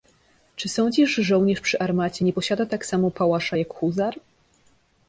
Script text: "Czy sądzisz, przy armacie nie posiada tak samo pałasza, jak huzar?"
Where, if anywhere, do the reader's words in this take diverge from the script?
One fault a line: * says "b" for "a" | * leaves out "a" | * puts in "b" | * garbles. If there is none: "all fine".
* puts in "że żołnierz"